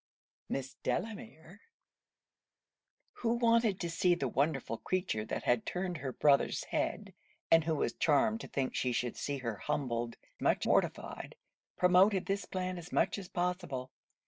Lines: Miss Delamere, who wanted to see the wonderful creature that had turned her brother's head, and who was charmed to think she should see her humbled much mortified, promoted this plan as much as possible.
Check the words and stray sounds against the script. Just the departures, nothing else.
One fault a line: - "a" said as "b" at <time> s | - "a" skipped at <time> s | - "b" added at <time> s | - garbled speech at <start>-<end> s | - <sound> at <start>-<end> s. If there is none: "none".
none